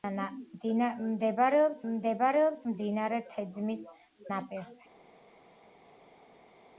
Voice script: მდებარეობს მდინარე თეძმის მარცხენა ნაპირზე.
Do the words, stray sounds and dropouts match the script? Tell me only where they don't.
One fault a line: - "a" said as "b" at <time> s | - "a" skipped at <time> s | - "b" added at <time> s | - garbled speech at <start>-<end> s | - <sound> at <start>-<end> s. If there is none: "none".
- "მდებარეობს" added at 1.9 s
- "მარცხენა" skipped at 3.8 s